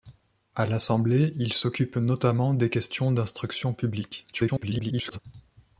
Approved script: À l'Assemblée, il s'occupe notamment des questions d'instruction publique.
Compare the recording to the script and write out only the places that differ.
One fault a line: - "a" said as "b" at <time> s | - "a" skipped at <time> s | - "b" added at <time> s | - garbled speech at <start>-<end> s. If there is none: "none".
- garbled speech at 4.3-5.2 s